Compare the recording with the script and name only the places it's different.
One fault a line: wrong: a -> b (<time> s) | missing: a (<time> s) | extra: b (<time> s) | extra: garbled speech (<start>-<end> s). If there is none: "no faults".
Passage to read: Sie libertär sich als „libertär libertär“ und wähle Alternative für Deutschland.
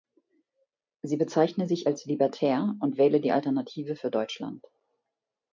wrong: libertär -> bezeichne (1.2 s)
missing: libertär (2.8 s)
extra: die (3.2 s)